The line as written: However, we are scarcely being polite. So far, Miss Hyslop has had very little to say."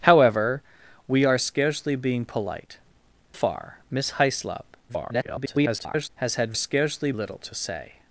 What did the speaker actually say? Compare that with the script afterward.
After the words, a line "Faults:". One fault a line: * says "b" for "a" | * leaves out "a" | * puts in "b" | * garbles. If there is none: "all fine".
However, we are scarcely being polite. Far, Miss Hyslop [garbled] has had scarcely little to say."
Faults:
* leaves out "So"
* garbles
* says "scarcely" for "very"